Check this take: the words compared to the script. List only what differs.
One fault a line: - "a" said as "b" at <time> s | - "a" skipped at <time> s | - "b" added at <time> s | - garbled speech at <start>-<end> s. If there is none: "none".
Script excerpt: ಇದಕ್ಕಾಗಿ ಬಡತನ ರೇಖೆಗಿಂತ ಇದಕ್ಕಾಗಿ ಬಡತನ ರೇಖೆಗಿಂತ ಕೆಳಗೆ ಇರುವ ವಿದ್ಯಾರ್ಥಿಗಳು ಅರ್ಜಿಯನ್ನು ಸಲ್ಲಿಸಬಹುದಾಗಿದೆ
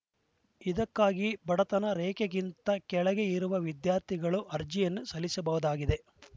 - "ಇದಕ್ಕಾಗಿ ಬಡತನ ರೇಖೆಗಿಂತ" skipped at 2.7 s